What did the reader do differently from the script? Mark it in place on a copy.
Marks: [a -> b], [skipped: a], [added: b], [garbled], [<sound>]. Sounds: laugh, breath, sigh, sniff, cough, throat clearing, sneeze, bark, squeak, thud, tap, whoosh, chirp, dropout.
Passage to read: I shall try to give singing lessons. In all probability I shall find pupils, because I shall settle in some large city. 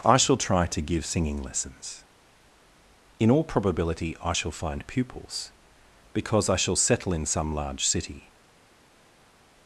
I shall try to give singing lessons. In all probability I shall find pupils, because I shall settle in some large city.